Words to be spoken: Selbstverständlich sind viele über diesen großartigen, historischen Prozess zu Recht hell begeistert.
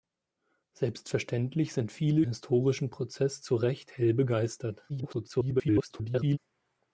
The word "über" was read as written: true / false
false